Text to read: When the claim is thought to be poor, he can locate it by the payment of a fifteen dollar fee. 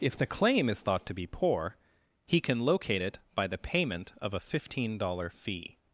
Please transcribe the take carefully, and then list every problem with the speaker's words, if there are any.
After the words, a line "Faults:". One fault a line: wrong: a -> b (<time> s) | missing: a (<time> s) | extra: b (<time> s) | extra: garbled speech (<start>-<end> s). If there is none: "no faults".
If the claim is thought to be poor, he can locate it by the payment of a fifteen dollar fee.
Faults:
wrong: When -> If (0.0 s)